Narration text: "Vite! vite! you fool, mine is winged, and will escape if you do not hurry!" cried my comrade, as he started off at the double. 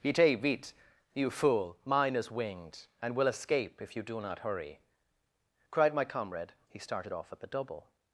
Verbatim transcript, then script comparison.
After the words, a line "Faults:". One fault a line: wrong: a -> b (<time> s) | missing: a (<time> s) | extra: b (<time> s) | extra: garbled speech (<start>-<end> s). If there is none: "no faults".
"Vite! vite! you fool, mine is winged, and will escape if you do not hurry!" cried my comrade, he started off at the double.
Faults:
missing: as (6.5 s)